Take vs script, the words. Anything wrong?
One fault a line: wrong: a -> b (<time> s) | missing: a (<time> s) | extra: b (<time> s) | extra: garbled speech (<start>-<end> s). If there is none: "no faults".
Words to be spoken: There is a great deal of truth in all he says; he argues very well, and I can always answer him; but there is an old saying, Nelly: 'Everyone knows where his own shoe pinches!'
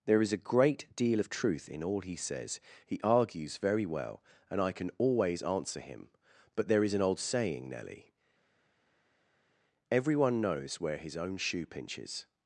no faults